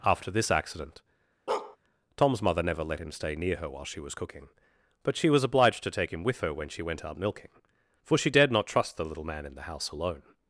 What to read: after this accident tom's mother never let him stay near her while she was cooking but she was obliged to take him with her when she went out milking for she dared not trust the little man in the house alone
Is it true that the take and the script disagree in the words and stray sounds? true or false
true